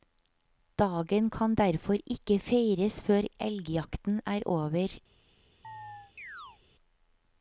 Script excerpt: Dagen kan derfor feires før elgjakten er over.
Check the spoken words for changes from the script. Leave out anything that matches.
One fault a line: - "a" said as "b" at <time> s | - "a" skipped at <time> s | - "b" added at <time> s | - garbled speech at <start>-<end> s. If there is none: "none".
- "ikke" added at 2.1 s